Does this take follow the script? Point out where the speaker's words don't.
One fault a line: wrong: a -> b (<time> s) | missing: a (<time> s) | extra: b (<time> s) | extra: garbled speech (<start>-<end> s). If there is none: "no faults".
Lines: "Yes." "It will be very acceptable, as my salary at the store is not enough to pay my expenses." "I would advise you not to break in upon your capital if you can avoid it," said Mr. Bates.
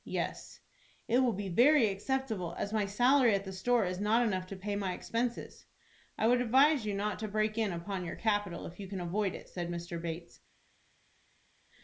no faults